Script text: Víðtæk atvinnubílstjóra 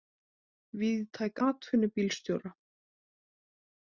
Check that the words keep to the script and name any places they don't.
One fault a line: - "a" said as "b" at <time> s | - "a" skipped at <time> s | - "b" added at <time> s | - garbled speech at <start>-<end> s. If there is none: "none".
none